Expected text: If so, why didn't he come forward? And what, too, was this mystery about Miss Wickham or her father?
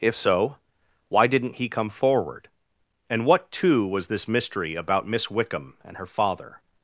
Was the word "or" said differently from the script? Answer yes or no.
yes